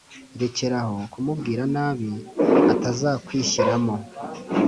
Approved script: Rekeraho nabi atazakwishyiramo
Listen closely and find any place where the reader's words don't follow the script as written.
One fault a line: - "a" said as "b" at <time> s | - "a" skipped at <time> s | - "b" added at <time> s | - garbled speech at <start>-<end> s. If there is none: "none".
- "kumubwira" added at 1.1 s